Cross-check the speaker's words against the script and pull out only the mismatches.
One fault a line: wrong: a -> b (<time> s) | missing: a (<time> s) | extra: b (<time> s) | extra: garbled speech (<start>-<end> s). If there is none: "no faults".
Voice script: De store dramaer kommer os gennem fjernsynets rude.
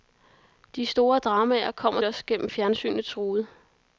no faults